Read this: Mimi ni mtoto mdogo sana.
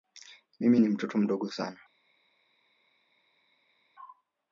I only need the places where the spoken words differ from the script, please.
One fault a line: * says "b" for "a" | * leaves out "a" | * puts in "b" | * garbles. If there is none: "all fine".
all fine